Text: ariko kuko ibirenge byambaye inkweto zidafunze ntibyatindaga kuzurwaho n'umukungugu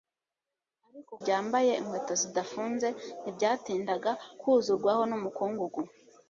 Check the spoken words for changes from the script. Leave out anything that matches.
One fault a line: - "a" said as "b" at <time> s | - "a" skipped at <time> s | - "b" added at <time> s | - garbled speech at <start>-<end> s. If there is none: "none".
- "kuko ibirenge" skipped at 1.1 s